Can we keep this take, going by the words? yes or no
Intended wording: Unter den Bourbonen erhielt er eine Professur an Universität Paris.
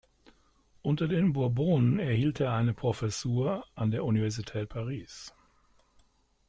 no